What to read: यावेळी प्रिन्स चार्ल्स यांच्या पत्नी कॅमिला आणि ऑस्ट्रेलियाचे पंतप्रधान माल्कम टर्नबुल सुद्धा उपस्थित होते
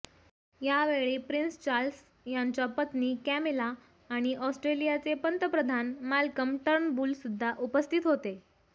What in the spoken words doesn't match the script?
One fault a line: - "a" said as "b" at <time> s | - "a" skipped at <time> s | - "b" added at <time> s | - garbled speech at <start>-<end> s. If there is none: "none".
none